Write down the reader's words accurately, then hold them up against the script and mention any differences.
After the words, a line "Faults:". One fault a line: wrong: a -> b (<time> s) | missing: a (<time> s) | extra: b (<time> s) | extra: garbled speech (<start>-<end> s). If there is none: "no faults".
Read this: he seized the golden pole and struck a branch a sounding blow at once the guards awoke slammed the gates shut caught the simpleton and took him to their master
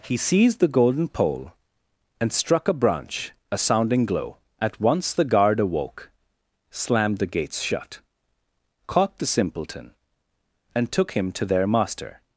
he seized the golden pole and struck a branch a sounding glow at once the guard awoke slammed the gates shut caught the simpleton and took him to their master
Faults:
wrong: blow -> glow (4.1 s)
wrong: guards -> guard (5.2 s)